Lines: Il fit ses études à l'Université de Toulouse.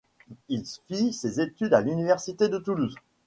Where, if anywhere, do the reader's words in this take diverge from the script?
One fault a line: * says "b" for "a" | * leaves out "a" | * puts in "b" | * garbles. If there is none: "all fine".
all fine